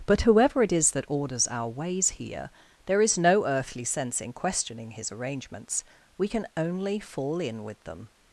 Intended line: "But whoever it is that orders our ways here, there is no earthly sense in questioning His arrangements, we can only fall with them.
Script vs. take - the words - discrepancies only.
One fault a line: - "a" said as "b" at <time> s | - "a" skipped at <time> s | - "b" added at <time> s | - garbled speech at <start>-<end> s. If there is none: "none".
- "in" added at 7.4 s